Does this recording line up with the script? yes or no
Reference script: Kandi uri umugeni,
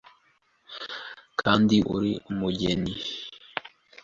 yes